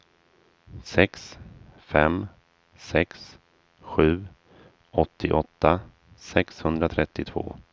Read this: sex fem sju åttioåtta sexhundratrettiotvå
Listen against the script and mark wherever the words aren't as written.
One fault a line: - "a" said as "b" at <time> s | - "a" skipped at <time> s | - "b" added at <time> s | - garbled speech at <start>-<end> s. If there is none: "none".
- "sex" added at 2.7 s